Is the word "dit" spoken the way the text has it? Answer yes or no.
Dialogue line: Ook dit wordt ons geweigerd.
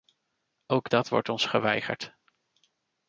no